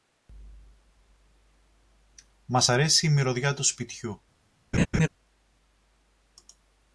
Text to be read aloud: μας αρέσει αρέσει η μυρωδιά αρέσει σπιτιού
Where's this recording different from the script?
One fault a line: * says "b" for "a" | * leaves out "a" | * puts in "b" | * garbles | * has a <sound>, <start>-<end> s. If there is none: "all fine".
* leaves out "αρέσει"
* says "του" for "αρέσει"
* has a laugh, 4.7-5.1 s